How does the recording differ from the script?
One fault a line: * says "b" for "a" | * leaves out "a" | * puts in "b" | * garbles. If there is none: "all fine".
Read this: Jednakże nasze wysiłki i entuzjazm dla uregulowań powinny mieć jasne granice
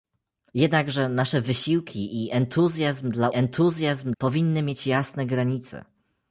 * says "entuzjazm" for "uregulowań"